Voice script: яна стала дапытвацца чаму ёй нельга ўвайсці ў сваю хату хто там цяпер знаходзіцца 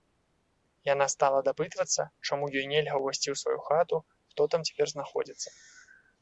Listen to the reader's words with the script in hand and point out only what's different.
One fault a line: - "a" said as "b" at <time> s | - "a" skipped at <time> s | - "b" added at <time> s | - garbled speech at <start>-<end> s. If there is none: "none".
none